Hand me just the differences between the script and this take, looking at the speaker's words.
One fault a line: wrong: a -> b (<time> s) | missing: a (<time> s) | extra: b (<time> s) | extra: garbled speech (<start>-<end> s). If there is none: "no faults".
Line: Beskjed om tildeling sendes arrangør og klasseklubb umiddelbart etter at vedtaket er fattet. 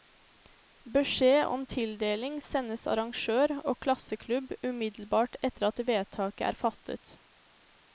no faults